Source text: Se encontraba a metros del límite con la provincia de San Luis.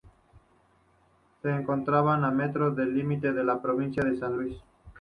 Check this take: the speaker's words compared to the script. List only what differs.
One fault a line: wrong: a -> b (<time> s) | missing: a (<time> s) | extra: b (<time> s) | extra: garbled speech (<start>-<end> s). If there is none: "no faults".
no faults